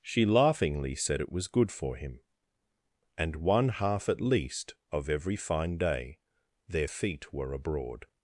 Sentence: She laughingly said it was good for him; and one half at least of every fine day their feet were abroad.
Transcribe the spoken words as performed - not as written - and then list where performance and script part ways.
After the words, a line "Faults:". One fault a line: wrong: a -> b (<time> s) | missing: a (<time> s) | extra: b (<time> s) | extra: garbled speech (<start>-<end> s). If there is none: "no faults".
She laughingly said it was good for him; and one half at least of every fine day their feet were abroad.
Faults:
no faults